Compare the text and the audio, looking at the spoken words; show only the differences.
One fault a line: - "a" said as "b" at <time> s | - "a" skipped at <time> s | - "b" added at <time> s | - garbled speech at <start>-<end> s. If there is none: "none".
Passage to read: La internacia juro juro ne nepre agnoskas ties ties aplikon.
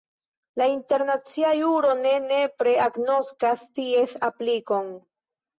- "juro" skipped at 1.9 s
- "ties" skipped at 4.2 s